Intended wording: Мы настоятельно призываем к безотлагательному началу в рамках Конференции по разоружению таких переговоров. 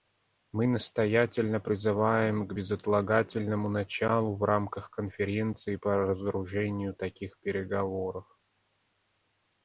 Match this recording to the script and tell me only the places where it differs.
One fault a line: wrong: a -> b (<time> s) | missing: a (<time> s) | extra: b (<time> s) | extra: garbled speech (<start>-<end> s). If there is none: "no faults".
no faults